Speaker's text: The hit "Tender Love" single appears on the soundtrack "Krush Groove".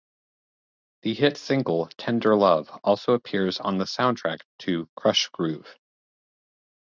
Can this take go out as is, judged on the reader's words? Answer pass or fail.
fail